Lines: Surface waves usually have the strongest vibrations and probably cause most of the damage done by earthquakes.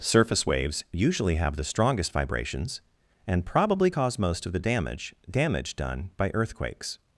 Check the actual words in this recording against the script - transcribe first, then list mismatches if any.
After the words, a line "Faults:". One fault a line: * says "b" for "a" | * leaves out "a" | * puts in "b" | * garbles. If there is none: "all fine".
Surface waves usually have the strongest vibrations and probably cause most of the damage damage done by earthquakes.
Faults:
* puts in "damage"